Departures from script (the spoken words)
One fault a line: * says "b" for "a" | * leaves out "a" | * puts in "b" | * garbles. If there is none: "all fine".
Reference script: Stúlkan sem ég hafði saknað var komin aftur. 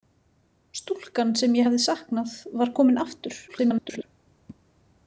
* garbles